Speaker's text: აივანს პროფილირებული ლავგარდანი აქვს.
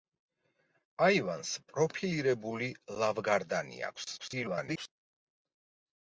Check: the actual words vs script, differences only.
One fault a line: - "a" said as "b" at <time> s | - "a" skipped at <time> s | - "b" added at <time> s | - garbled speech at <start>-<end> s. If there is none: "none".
- garbled speech at 4.2-4.9 s